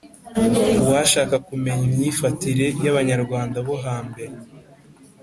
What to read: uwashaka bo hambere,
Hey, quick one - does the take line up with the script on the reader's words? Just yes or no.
no